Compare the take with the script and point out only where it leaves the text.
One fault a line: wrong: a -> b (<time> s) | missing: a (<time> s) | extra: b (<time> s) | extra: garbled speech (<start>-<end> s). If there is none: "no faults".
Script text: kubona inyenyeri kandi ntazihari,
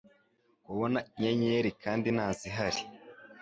no faults